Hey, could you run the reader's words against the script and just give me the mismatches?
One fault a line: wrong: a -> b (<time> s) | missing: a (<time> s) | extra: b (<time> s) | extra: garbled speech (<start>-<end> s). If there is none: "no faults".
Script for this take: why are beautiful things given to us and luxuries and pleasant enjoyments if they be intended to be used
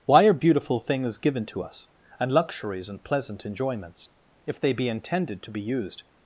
no faults